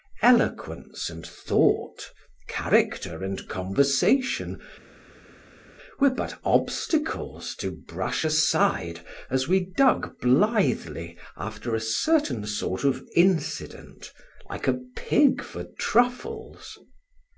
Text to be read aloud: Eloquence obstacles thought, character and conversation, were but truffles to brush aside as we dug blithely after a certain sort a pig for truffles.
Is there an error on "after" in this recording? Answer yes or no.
no